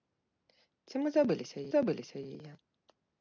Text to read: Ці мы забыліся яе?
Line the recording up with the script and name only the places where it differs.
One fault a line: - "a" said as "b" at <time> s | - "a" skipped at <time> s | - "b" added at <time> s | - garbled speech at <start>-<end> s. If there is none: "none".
- "забыліся" added at 1.7 s